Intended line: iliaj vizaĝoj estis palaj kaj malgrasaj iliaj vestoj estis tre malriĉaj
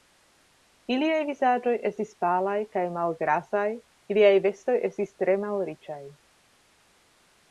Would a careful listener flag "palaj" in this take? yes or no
no